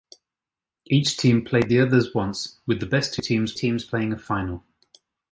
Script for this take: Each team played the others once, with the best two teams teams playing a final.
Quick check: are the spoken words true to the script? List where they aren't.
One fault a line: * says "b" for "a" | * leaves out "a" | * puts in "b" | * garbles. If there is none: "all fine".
all fine